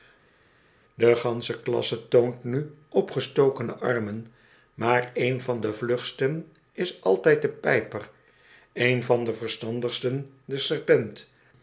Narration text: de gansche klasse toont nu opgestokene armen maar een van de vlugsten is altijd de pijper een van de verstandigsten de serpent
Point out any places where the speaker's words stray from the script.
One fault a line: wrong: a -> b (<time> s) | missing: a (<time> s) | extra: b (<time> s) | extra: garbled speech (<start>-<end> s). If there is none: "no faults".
no faults